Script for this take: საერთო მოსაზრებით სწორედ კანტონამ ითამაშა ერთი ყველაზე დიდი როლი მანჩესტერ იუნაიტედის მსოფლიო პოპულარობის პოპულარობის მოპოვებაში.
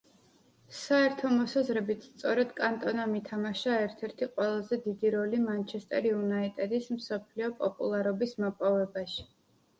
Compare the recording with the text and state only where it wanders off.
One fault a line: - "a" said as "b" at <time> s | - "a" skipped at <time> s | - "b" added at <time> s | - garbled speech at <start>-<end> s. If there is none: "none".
- "ერთ" added at 3.8 s
- "პოპულარობის" skipped at 8.4 s